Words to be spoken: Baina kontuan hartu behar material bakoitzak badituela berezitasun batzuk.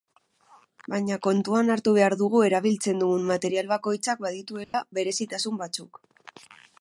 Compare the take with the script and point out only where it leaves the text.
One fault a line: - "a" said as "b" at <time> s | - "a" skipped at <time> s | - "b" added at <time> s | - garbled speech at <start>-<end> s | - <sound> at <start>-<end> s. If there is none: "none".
- "dugu erabiltzen dugun" added at 2.2 s
- dropout at 4.6-4.7 s